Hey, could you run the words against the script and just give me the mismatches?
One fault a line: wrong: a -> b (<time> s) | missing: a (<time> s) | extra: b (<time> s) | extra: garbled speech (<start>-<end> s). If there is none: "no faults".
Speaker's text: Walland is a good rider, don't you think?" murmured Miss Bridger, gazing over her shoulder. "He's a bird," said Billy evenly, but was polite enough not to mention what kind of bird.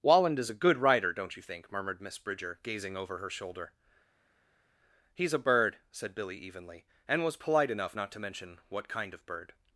wrong: but -> and (7.1 s)